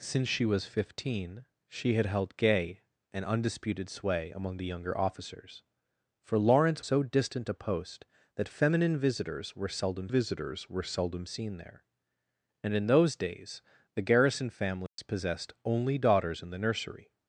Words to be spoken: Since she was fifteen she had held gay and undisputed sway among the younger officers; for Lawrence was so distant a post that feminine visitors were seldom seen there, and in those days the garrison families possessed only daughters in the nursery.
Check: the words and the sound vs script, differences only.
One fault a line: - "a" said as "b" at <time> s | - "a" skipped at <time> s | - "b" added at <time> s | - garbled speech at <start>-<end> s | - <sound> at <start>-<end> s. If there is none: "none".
- "was" skipped at 6.8 s
- "visitors were seldom" added at 10.1 s
- dropout at 14.9-15.0 s